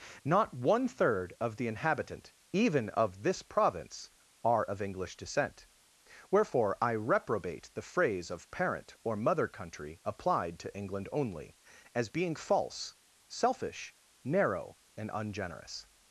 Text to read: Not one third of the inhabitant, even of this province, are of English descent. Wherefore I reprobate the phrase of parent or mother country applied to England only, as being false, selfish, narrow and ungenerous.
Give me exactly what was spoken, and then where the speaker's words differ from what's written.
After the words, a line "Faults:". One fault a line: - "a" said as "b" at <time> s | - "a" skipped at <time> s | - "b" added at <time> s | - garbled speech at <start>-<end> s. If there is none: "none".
Not one third of the inhabitant, even of this province, are of English descent. Wherefore I reprobate the phrase of parent or mother country applied to England only, as being false, selfish, narrow and ungenerous.
Faults:
none